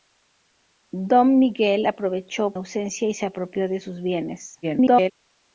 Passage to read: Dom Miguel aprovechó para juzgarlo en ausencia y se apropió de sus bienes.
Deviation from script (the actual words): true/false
true